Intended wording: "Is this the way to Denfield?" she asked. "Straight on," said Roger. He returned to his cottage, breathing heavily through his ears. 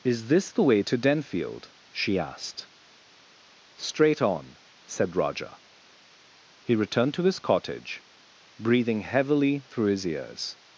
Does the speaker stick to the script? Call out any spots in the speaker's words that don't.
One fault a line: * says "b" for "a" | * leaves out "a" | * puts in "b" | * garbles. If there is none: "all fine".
all fine